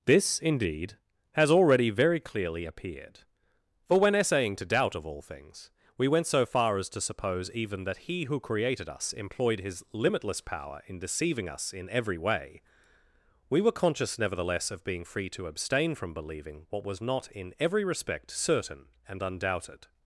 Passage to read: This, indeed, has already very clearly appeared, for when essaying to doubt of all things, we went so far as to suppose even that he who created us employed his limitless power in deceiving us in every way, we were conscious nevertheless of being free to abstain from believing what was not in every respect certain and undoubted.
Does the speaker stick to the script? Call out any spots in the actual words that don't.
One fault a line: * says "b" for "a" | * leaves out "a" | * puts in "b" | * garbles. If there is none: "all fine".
all fine